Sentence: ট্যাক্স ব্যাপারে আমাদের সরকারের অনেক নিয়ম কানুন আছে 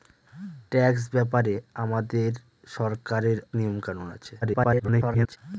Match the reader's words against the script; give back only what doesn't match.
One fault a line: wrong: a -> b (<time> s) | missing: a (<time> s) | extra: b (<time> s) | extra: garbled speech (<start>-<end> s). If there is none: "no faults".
missing: অনেক (3.4 s)
extra: garbled speech (4.4-5.4 s)